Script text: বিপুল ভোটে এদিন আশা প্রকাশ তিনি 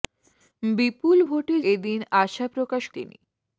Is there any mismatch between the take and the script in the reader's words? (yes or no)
no